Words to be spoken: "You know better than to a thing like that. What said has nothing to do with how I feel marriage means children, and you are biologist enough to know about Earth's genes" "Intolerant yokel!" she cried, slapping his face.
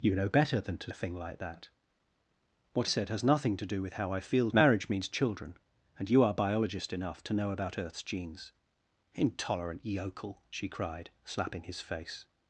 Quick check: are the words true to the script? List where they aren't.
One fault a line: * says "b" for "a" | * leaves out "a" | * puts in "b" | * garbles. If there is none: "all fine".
all fine